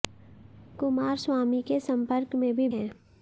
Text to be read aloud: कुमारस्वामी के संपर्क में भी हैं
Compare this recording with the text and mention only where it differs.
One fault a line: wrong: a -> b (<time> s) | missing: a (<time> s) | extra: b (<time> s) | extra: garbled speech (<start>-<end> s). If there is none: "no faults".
no faults